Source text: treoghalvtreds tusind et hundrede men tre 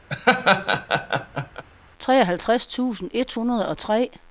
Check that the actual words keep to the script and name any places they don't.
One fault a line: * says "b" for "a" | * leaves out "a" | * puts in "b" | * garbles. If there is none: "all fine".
* says "og" for "men"